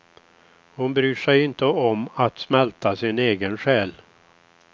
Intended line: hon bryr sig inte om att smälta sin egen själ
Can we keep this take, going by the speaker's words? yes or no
yes